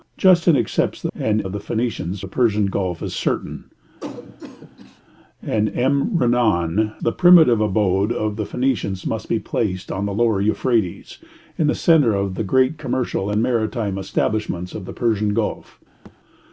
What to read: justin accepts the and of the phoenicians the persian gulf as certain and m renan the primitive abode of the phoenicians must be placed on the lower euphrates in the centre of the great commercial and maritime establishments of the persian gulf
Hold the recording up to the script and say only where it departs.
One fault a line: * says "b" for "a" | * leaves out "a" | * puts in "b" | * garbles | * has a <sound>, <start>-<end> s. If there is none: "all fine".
* has a cough, 4.0-5.0 s
* has a thud, 16.0-16.2 s